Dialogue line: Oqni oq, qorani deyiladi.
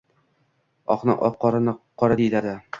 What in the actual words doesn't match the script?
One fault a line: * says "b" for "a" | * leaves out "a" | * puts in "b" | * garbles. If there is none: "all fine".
* puts in "qora"